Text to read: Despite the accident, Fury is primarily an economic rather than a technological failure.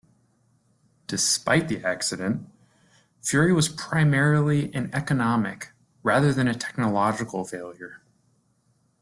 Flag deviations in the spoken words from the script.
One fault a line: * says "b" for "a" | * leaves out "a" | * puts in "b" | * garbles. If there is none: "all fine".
* says "was" for "is"